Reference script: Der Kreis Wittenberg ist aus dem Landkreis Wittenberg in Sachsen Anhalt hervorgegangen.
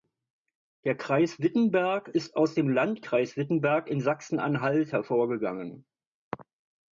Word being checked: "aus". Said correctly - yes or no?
yes